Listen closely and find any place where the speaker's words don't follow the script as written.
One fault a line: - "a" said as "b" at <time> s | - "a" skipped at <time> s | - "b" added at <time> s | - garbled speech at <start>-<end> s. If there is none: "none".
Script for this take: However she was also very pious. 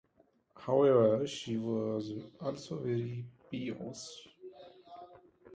none